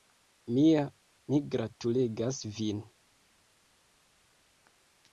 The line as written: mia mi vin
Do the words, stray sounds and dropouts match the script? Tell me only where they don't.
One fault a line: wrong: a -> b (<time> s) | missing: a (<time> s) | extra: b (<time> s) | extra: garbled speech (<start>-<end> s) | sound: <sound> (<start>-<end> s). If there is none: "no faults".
extra: gratulegas (1.6 s)